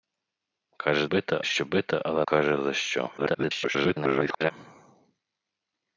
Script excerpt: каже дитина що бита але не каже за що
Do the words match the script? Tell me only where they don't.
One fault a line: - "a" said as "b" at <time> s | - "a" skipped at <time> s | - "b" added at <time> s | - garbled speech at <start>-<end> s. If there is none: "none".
- "дитина" said as "бита" at 1.0 s
- "не" skipped at 2.3 s
- garbled speech at 3.2-4.5 s